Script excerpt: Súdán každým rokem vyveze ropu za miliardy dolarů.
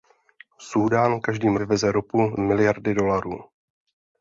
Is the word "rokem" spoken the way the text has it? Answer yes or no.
no